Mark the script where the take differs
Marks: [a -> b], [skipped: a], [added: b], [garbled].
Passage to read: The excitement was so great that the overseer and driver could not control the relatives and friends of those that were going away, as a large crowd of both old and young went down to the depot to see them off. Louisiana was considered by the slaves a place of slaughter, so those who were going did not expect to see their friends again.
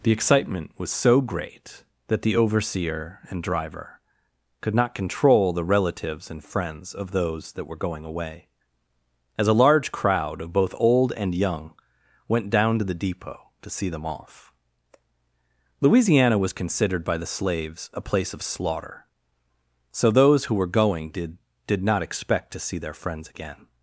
The excitement was so great that the overseer and driver could not control the relatives and friends of those that were going away, as a large crowd of both old and young went down to the depot to see them off. Louisiana was considered by the slaves a place of slaughter, so those who were going did [added: did] not expect to see their friends again.